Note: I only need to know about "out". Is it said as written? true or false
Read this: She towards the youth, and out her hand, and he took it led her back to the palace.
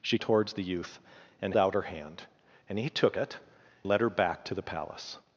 true